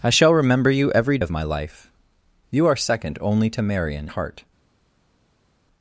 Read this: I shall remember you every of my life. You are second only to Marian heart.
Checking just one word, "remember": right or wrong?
right